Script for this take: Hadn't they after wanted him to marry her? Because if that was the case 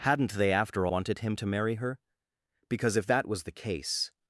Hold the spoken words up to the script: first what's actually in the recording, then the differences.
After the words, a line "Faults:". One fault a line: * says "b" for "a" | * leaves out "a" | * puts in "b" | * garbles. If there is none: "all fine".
Hadn't they after wanted him to marry her? Because if that was the case
Faults:
all fine